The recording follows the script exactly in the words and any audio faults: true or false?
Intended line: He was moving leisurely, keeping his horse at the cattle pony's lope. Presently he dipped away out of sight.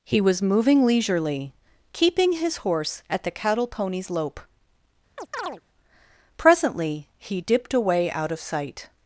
false